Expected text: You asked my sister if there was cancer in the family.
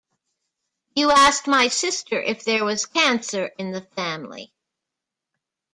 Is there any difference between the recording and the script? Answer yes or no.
no